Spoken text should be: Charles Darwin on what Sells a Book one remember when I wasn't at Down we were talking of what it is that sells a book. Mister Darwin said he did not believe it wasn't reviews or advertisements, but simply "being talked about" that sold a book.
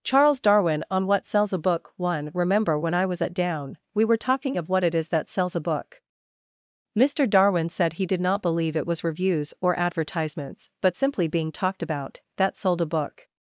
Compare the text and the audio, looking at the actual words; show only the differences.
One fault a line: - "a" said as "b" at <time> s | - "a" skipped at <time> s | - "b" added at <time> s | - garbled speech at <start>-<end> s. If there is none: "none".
- "wasn't" said as "was" at 3.0 s
- "wasn't" said as "was" at 8.9 s